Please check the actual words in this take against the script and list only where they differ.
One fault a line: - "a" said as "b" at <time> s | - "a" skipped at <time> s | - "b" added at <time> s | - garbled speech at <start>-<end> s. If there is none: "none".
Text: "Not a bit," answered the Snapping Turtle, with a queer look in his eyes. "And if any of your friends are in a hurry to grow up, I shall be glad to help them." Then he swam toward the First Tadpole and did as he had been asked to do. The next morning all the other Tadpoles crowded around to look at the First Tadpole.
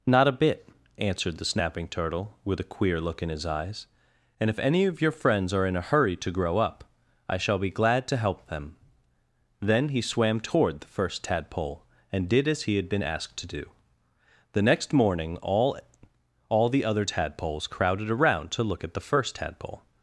- "all" added at 16.5 s